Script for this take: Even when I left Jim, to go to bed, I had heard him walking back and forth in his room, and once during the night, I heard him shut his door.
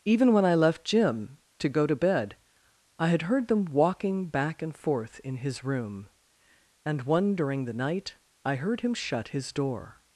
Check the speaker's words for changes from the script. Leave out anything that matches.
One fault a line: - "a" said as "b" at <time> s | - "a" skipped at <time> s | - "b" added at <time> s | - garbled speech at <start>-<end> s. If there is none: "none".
- "him" said as "them" at 3.5 s
- "once" said as "one" at 7.0 s